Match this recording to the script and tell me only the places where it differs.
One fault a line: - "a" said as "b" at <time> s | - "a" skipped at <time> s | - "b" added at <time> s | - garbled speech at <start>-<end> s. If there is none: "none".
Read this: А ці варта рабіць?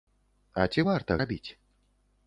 none